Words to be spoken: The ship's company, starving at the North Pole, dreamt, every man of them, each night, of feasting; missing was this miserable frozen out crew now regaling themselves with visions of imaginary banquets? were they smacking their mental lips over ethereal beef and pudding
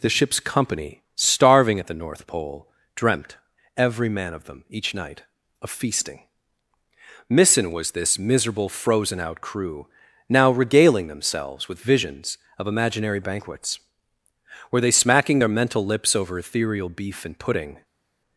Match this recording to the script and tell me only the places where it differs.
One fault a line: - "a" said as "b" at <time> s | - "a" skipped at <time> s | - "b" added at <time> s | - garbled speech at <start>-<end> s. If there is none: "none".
none